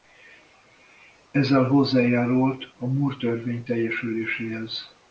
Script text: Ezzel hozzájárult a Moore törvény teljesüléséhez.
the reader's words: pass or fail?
pass